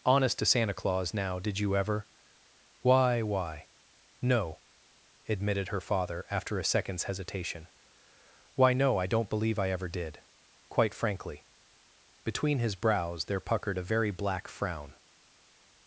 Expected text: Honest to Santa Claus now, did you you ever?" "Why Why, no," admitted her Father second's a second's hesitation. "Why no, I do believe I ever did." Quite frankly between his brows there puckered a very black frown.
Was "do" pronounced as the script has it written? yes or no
no